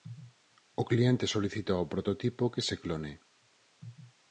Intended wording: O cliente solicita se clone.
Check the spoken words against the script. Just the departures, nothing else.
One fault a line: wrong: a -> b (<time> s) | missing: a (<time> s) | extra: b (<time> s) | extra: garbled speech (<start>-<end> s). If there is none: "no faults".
extra: ao prototipo que (1.8 s)